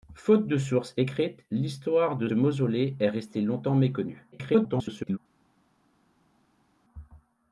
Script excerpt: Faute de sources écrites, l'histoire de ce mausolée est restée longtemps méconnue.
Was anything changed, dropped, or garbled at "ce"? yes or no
yes